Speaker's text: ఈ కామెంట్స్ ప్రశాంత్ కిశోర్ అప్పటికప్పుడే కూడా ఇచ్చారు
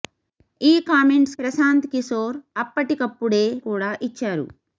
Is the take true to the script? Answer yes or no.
yes